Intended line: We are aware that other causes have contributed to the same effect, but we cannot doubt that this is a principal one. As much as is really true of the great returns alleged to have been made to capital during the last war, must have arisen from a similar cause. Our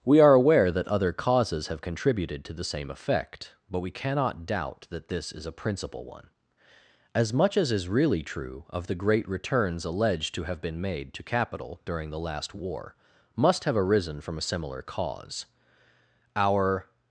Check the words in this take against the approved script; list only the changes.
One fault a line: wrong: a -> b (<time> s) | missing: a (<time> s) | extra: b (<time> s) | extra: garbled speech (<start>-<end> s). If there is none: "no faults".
no faults